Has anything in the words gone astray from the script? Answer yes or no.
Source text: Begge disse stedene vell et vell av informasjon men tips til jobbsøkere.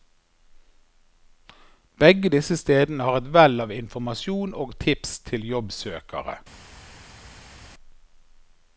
yes